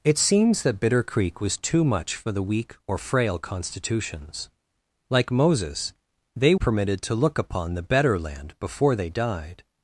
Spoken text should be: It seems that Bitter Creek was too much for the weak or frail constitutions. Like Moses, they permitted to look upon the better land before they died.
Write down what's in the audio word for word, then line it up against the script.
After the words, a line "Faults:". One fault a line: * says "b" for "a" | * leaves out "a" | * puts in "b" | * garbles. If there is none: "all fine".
It seems that Bitter Creek was too much for the weak or frail constitutions. Like Moses, they permitted to look upon the better land before they died.
Faults:
all fine